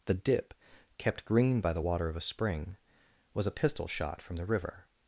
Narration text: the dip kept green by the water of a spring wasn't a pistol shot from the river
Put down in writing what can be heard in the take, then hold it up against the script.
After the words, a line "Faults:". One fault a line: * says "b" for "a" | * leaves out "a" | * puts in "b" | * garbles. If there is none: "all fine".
the dip kept green by the water of a spring was a pistol shot from the river
Faults:
* says "was" for "wasn't"